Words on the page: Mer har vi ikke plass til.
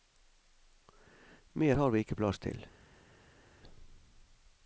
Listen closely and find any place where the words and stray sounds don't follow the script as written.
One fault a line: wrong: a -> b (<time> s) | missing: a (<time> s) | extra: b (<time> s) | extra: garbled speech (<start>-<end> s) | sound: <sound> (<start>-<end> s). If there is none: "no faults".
no faults